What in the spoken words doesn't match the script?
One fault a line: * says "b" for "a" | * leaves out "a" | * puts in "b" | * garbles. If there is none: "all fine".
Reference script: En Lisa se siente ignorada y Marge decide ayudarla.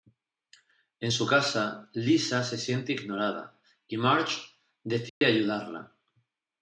* puts in "su casa"